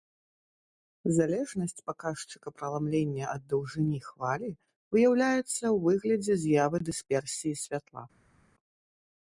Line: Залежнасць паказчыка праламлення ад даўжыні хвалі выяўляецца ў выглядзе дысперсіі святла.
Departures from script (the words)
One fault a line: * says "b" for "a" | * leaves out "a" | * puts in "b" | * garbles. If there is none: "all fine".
* puts in "з'явы"